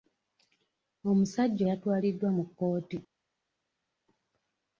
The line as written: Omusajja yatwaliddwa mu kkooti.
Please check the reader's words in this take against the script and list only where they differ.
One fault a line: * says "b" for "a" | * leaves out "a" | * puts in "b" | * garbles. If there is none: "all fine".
all fine